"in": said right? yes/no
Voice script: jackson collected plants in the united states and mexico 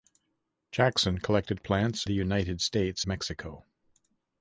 no